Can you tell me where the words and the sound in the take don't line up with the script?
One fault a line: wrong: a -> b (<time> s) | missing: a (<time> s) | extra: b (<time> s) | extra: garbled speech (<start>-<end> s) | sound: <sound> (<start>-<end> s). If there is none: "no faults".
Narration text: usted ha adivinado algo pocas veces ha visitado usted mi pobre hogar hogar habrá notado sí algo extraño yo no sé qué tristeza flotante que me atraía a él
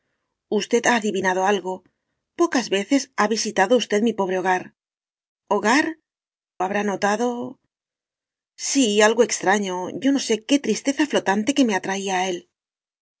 no faults